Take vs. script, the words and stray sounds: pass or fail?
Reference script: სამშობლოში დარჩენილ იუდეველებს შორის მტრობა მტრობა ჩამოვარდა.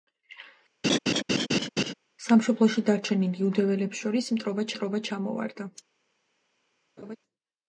fail